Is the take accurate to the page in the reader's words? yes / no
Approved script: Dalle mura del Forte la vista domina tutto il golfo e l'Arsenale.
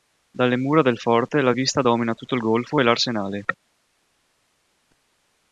yes